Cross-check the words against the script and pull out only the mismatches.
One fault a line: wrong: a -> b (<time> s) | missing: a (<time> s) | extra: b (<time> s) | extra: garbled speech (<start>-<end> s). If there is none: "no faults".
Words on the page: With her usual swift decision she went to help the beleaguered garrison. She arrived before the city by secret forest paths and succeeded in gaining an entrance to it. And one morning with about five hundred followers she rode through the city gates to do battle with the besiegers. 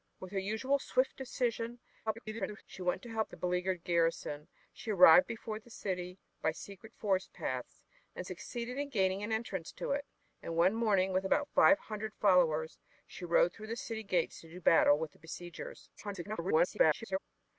extra: garbled speech (2.1-2.6 s)
extra: garbled speech (16.0-17.2 s)